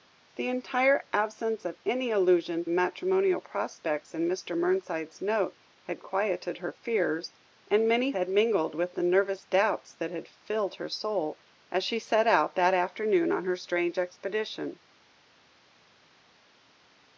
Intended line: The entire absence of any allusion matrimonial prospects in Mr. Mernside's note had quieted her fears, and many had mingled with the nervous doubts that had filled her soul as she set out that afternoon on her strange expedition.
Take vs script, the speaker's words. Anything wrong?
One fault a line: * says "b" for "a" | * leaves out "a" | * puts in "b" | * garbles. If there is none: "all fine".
all fine